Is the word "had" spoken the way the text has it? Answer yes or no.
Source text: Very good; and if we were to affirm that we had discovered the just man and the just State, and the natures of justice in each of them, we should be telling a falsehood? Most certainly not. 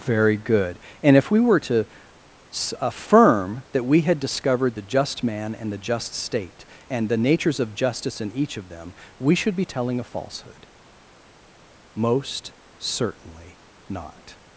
yes